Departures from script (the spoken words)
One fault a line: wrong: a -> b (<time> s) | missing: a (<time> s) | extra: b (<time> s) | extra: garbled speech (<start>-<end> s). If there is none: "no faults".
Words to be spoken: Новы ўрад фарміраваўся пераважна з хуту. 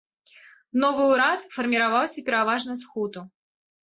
no faults